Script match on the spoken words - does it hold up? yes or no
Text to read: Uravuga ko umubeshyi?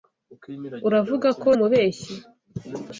yes